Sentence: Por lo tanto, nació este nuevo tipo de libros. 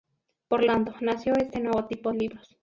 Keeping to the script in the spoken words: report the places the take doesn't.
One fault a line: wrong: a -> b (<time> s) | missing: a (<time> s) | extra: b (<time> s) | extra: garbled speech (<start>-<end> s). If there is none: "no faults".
missing: lo (0.7 s)
missing: de (2.1 s)